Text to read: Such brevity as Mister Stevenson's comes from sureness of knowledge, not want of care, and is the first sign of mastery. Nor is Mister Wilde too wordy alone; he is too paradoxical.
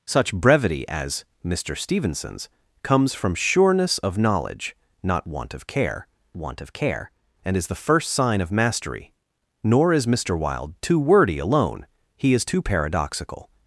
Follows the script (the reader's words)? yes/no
no